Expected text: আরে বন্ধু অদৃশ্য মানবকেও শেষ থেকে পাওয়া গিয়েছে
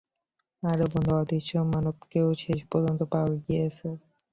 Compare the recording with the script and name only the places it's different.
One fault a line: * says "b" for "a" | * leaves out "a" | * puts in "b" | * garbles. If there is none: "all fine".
* says "পর্যন্ত" for "থেকে"